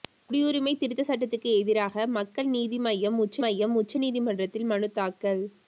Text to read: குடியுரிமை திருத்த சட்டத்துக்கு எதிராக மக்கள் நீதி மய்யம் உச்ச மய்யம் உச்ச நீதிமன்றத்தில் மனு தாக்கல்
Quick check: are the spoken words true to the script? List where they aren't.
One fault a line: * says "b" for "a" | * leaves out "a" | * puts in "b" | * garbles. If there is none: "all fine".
all fine